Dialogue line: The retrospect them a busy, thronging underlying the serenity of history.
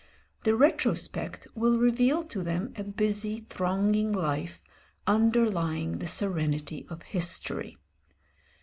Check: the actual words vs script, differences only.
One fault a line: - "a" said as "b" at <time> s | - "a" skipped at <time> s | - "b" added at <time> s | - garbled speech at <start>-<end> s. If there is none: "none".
- "will reveal to" added at 1.5 s
- "life" added at 4.1 s